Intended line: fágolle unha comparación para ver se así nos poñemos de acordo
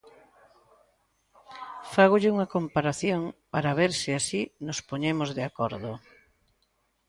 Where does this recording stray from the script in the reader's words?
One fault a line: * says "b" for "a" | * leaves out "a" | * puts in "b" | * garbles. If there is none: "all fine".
all fine